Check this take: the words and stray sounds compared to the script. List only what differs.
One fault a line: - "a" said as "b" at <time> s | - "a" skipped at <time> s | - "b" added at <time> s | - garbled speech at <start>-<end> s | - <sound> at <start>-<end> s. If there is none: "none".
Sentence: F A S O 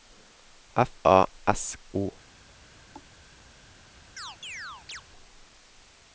- thud at 2.9-3.1 s
- chirp at 4.2-5.0 s